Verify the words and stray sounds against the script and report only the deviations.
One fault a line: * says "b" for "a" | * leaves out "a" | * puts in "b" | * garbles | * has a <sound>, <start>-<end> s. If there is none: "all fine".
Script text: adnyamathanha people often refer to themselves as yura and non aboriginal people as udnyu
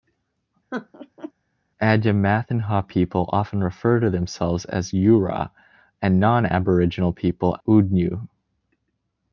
* has a laugh, 0.7-1.3 s
* leaves out "as"